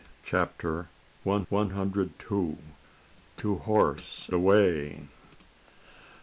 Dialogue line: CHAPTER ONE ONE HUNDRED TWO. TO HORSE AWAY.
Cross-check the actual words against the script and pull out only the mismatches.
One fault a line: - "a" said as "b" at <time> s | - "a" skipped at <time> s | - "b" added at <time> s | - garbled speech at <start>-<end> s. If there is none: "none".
none